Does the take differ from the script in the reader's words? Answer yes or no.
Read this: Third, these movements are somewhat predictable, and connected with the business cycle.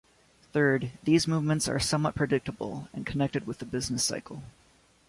no